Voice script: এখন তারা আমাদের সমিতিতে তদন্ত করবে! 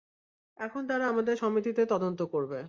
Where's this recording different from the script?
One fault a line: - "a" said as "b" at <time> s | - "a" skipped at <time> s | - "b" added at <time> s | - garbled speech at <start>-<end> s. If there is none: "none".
none